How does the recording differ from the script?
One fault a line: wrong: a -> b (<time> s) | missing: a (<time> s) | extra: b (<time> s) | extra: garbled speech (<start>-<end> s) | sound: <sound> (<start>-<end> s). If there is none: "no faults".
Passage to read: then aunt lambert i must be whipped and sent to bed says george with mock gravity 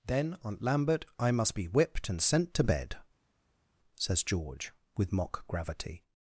no faults